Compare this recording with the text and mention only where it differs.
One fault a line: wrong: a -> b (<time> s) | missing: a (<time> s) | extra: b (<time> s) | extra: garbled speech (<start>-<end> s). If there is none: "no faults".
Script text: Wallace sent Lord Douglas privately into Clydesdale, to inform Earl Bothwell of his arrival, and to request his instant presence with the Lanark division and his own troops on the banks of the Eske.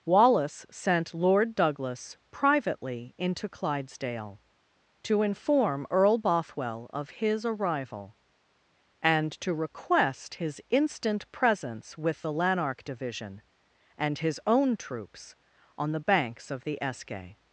no faults